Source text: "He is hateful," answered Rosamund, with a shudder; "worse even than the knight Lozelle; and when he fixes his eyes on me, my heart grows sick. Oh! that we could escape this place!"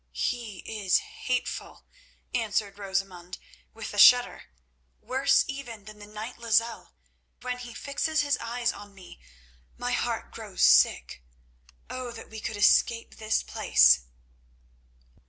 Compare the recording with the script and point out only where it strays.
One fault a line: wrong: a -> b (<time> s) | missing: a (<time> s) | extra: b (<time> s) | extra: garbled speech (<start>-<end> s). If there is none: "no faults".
missing: and (6.9 s)